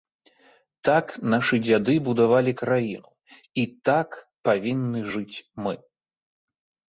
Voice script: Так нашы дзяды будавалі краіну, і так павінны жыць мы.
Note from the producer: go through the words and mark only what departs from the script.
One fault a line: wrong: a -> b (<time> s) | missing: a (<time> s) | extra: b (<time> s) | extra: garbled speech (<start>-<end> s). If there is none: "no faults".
no faults